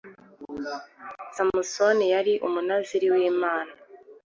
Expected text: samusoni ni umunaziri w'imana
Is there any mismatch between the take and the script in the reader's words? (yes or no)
yes